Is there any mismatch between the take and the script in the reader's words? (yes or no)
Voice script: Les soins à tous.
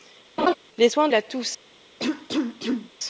no